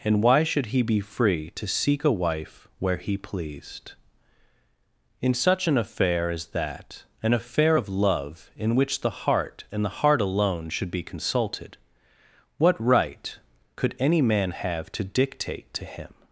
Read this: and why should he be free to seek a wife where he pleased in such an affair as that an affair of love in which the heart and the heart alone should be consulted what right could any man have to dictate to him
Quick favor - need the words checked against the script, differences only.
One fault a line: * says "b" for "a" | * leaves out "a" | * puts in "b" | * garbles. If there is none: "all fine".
all fine